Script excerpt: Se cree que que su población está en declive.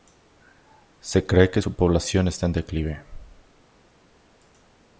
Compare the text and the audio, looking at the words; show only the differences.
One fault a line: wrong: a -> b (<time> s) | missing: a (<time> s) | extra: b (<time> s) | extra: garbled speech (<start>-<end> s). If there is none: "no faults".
missing: que (1.6 s)